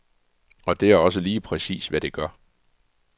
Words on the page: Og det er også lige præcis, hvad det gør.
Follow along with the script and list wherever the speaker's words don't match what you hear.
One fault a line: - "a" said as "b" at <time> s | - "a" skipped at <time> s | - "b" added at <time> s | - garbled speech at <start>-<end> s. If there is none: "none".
none